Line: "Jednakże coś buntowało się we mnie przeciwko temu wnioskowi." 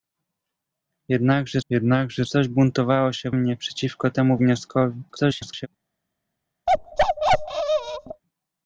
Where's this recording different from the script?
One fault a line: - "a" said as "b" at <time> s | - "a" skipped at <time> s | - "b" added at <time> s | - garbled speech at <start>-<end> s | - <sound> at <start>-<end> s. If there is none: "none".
- "jednakże" added at 1.7 s
- "we" skipped at 3.3 s
- garbled speech at 5.1-5.7 s
- bark at 6.7-8.2 s